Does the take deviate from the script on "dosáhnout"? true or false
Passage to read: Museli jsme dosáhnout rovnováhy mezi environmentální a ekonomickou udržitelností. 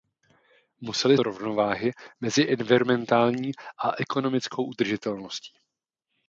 true